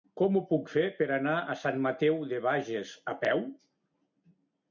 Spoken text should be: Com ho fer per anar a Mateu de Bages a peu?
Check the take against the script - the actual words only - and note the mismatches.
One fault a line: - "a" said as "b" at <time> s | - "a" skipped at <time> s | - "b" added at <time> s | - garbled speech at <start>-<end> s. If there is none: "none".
- "puc" added at 0.5 s
- "Sant" added at 1.6 s